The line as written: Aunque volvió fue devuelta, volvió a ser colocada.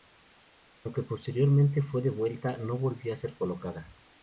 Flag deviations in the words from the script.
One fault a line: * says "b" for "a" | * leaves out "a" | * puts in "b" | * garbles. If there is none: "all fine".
* says "posteriormente" for "volvió"
* puts in "no"